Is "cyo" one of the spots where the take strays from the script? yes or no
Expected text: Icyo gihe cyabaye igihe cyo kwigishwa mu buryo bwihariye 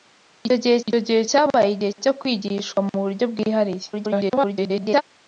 no